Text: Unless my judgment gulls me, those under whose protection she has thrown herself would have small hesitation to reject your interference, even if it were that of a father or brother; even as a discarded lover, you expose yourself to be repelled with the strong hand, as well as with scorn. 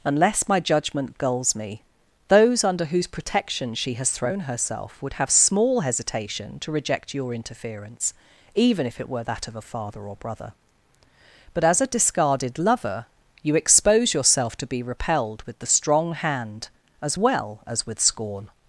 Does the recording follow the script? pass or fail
fail